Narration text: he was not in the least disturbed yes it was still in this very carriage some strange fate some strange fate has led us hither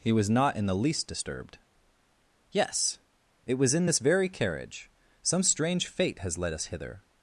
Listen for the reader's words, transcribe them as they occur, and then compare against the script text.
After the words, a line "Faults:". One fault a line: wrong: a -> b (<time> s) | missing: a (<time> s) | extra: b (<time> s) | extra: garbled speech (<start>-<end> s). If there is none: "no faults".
he was not in the least disturbed yes it was in this very carriage some strange fate has led us hither
Faults:
missing: still (3.8 s)
missing: some strange fate (6.2 s)